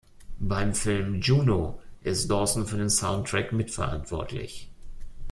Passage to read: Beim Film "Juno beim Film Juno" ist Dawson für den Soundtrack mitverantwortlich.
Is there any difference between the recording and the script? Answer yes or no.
yes